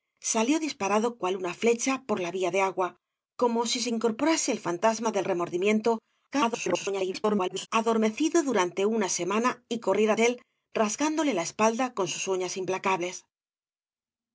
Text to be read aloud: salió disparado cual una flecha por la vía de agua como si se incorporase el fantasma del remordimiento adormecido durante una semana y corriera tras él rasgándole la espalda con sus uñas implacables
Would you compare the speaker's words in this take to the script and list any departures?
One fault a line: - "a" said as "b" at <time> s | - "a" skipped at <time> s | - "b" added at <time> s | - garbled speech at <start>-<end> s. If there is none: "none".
- garbled speech at 6.3-7.7 s
- "tras" skipped at 10.2 s